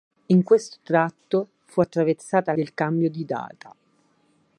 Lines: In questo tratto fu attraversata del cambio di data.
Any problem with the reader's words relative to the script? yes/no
no